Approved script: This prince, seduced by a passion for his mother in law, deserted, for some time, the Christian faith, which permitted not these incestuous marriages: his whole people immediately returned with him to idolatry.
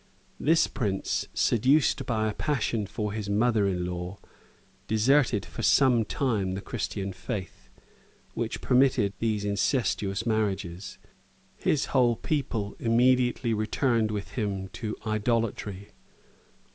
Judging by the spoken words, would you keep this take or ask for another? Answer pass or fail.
fail